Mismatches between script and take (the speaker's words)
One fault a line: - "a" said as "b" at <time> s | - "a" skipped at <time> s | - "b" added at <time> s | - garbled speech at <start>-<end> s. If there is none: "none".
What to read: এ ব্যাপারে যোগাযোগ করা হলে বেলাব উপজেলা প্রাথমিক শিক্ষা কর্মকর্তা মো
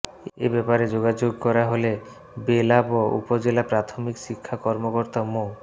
none